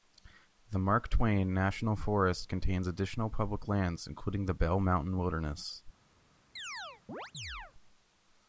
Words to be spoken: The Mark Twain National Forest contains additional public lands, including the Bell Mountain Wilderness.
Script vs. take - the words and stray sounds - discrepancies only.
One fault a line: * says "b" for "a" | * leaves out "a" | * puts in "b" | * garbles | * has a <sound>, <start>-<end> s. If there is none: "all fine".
* has a chirp, 6.6-7.7 s